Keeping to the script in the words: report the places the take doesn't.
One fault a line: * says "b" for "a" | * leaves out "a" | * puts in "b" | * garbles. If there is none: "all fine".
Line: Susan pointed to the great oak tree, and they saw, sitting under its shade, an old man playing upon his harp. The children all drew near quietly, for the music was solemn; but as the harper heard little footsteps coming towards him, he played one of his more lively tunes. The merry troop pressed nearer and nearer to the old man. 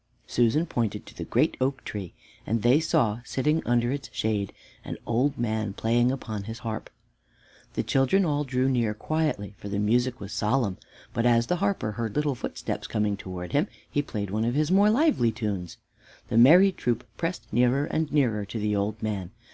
all fine